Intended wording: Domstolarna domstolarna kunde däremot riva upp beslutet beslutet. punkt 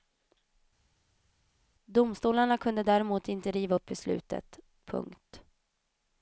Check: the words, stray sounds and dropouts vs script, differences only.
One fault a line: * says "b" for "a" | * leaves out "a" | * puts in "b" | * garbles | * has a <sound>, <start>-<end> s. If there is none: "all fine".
* leaves out "domstolarna"
* puts in "inte"
* leaves out "beslutet"